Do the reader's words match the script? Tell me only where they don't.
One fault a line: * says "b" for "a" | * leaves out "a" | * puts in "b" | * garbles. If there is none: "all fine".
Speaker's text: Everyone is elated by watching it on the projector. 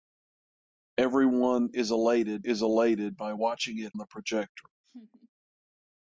* puts in "is elated"
* leaves out "on"